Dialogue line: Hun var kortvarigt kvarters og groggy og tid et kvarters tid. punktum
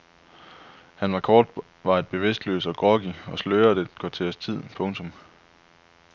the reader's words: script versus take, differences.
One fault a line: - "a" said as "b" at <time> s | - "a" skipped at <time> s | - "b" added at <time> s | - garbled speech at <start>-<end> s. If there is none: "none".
- "Hun" said as "Han" at 0.9 s
- "kvarters" said as "bevidstløs" at 2.1 s
- "tid" said as "sløret" at 3.4 s